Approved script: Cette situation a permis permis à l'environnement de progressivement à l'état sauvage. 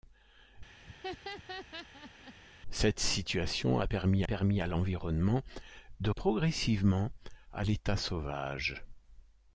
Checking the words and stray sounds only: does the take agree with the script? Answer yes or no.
no